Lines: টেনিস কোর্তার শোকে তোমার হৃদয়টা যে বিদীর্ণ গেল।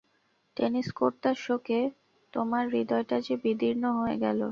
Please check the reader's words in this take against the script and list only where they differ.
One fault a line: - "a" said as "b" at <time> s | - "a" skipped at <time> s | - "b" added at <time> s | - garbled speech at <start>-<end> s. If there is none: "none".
- "হয়ে" added at 4.0 s